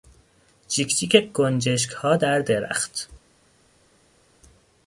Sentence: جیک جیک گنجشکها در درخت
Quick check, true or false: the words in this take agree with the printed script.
true